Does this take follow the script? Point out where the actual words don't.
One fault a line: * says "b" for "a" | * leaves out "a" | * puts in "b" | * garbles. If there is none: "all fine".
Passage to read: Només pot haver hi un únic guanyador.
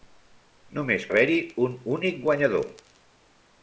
* leaves out "pot"